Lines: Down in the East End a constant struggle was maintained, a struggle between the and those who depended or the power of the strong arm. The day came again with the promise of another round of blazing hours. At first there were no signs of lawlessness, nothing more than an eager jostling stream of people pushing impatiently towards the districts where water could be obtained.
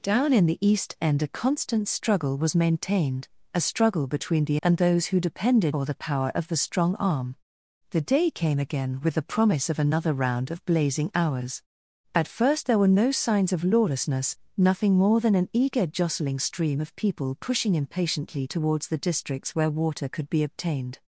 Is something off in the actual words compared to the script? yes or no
no